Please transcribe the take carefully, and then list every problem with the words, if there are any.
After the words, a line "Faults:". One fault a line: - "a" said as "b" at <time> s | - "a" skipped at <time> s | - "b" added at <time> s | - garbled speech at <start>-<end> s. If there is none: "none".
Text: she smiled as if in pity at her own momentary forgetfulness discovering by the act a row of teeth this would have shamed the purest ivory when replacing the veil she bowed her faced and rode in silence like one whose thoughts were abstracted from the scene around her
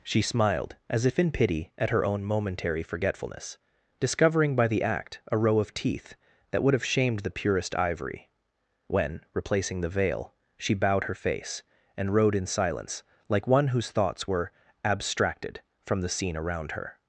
she smiled as if in pity at her own momentary forgetfulness discovering by the act a row of teeth that would have shamed the purest ivory when replacing the veil she bowed her face and rode in silence like one whose thoughts were abstracted from the scene around her
Faults:
- "this" said as "that" at 6.5 s
- "faced" said as "face" at 11.2 s